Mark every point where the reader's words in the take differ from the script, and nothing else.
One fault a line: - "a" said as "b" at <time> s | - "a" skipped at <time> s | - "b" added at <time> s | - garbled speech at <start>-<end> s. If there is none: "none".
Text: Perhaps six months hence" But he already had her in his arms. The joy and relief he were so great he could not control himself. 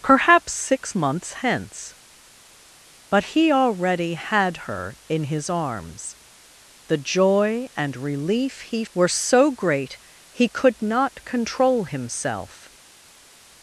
none